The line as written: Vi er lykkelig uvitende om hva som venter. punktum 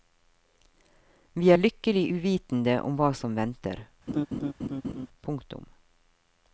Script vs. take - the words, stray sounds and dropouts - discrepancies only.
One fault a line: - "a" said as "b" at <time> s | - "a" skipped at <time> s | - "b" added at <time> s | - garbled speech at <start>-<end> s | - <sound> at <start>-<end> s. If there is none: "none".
- laugh at 4.1-5.1 s